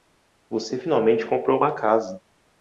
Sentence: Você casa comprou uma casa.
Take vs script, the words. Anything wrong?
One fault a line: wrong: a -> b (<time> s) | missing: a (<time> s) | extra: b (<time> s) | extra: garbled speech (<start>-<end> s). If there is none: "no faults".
wrong: casa -> finalmente (0.8 s)